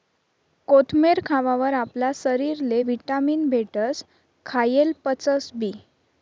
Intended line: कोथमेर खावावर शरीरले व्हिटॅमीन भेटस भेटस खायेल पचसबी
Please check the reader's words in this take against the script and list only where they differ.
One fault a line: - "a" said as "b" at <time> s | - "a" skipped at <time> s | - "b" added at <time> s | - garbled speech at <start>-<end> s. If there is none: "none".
- "आपला" added at 1.7 s
- "भेटस" skipped at 4.0 s